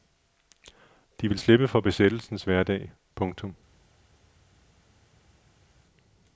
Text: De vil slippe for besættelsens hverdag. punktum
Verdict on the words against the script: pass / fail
pass